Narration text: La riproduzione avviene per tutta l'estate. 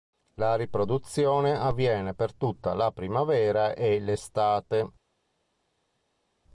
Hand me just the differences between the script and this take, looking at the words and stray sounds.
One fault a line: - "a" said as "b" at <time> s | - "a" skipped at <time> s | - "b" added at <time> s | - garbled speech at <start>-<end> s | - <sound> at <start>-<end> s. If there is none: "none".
- "la primavera e" added at 2.7 s